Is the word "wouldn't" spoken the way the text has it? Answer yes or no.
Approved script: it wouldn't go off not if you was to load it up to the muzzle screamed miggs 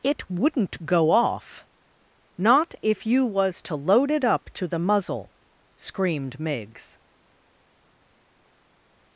yes